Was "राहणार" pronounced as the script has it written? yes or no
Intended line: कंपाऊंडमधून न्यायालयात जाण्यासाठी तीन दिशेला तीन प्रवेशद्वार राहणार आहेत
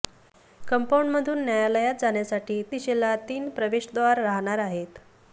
yes